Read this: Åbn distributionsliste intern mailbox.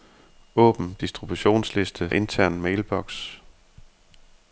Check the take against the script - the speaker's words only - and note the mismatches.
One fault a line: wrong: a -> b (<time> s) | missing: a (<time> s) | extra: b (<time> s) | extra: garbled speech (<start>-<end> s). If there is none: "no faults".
no faults